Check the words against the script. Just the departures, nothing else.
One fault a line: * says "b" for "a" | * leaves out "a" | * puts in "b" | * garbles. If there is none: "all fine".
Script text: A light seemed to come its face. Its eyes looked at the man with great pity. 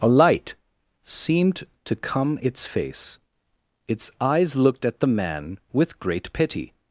all fine